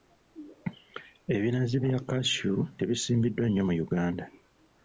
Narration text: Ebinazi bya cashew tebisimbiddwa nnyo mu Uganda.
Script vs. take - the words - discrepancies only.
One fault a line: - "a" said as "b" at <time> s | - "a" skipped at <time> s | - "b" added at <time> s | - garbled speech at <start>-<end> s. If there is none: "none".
none